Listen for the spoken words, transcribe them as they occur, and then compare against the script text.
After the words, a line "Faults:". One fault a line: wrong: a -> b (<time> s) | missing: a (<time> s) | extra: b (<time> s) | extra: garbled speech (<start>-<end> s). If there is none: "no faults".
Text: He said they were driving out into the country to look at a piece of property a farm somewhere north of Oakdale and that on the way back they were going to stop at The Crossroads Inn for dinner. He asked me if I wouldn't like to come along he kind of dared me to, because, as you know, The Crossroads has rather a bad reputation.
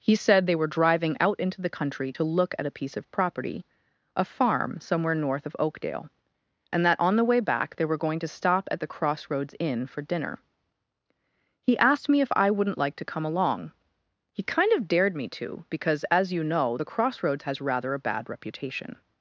He said they were driving out into the country to look at a piece of property a farm somewhere north of Oakdale and that on the way back they were going to stop at The Crossroads Inn for dinner. He asked me if I wouldn't like to come along he kind of dared me to, because, as you know, The Crossroads has rather a bad reputation.
Faults:
no faults